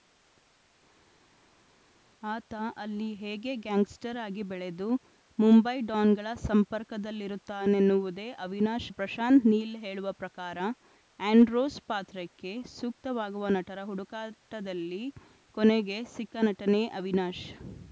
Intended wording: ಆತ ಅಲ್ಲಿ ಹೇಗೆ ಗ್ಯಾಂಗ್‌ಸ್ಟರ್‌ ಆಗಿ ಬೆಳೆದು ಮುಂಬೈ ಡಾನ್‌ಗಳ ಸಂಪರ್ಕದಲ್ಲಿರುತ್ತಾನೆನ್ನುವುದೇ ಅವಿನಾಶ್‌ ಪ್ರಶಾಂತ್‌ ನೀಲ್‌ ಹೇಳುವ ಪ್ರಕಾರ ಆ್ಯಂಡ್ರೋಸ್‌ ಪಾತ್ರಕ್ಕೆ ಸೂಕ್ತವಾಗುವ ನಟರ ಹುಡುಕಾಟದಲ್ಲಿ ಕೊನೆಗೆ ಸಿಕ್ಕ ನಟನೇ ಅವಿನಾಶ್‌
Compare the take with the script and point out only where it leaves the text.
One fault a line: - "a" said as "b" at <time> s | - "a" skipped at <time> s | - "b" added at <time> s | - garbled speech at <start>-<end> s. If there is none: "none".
none